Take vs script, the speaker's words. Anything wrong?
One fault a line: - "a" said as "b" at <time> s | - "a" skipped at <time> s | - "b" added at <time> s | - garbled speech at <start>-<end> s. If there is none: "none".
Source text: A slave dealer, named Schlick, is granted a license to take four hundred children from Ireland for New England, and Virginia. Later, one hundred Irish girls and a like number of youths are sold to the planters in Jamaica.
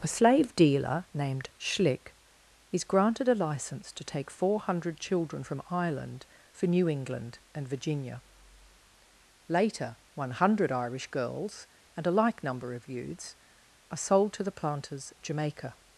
- "in" skipped at 15.1 s